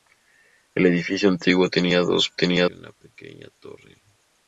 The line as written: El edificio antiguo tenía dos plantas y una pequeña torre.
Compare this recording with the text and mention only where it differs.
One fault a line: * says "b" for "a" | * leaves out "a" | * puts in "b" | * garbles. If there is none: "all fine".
* says "tenía" for "plantas"